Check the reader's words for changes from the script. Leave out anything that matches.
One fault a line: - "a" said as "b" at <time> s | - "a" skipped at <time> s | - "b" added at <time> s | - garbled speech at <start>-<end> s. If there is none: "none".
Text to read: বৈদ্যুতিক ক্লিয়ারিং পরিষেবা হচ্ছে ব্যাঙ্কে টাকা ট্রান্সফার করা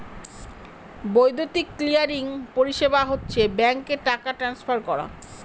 none